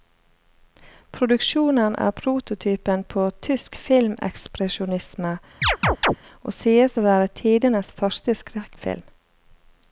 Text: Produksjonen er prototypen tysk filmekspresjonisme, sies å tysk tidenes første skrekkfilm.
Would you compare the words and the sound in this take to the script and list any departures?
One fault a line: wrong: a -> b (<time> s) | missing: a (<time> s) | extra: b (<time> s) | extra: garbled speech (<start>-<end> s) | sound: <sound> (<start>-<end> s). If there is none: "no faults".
extra: på (3.0 s)
sound: chirp (5.6-6.2 s)
extra: og (6.4 s)
wrong: tysk -> være (7.1 s)